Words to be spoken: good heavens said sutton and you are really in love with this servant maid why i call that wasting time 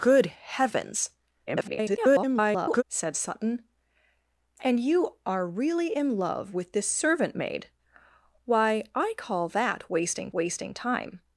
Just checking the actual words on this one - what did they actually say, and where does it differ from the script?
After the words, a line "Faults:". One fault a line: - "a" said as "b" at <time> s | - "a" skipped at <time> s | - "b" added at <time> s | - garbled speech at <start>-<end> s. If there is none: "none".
good heavens [garbled] said sutton and you are really in love with this servant maid why i call that wasting wasting time
Faults:
- garbled speech at 1.5-2.8 s
- "wasting" added at 10.3 s